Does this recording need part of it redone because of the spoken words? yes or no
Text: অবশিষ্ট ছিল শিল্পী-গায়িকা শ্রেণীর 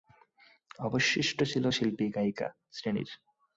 no